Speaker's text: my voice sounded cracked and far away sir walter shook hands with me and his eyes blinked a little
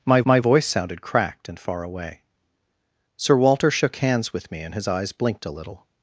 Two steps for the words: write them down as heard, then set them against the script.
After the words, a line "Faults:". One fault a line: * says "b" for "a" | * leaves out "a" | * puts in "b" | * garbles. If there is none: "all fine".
my my voice sounded cracked and far away sir walter shook hands with me and his eyes blinked a little
Faults:
* puts in "my"